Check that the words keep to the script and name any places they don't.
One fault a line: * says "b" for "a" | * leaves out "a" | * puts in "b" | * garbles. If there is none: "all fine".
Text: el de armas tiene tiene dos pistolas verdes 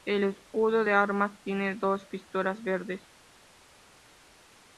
* puts in "escudo"
* leaves out "tiene"